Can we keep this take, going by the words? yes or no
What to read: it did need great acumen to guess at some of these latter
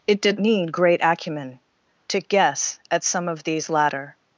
yes